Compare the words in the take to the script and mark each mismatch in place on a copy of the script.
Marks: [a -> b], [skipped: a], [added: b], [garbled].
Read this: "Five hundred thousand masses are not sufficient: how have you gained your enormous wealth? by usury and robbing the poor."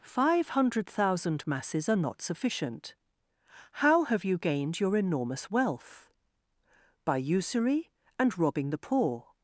"Five hundred thousand masses are not sufficient: how have you gained your enormous wealth? by usury and robbing the poor."